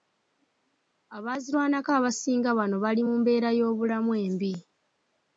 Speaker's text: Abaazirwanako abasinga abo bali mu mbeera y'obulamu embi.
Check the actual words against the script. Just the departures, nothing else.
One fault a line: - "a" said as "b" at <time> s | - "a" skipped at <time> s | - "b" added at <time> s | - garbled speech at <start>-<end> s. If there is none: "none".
- "abo" said as "bano" at 2.6 s